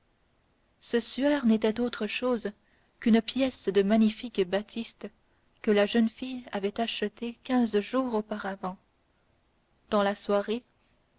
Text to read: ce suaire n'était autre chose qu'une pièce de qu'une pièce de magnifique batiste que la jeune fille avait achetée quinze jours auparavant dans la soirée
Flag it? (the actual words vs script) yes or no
yes